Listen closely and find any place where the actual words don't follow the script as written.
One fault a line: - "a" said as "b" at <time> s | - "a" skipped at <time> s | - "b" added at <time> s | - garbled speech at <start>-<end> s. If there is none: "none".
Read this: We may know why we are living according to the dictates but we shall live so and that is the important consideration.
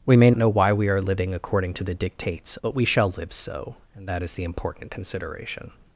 none